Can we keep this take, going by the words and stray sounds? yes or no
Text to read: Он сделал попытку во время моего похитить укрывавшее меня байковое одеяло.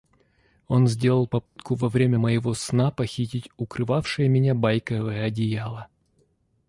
no